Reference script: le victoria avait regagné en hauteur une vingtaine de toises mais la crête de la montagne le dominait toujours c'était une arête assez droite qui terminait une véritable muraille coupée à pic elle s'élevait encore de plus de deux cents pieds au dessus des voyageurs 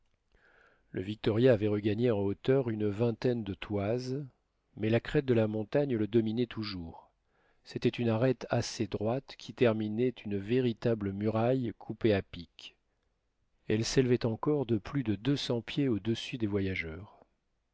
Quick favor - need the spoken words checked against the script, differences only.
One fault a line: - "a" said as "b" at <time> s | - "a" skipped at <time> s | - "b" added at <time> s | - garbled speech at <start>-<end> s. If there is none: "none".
none